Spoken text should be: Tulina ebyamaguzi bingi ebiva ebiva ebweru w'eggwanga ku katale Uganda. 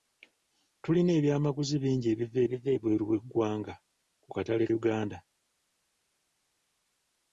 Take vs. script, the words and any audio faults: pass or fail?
pass